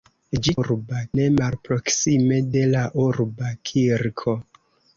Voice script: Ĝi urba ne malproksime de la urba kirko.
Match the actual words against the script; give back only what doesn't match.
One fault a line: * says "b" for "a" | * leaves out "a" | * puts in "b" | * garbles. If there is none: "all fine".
all fine